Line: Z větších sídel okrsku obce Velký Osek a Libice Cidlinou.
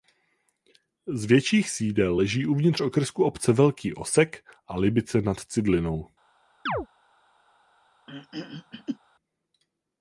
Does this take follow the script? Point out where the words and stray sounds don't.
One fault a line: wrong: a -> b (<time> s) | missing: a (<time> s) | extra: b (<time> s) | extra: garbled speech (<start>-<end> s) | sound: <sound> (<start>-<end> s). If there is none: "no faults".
extra: leží uvnitř (2.2 s)
extra: nad (5.2 s)
sound: chirp (6.7-6.9 s)
sound: throat clearing (8.1-9.0 s)